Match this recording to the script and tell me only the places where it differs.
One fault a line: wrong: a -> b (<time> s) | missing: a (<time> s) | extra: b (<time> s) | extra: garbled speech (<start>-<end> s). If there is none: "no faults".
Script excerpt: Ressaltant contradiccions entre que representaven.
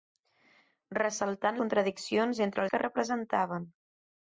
no faults